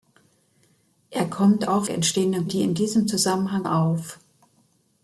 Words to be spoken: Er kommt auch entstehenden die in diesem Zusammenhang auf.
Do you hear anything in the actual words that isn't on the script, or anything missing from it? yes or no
no